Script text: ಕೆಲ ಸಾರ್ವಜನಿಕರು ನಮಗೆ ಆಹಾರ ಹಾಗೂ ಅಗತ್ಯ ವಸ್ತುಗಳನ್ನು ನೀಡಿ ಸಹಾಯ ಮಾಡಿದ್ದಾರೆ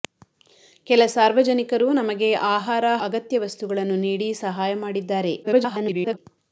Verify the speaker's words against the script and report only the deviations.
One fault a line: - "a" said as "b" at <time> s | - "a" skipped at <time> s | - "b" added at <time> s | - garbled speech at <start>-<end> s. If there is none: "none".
- "ಹಾಗೂ" skipped at 2.9 s
- garbled speech at 5.4-6.2 s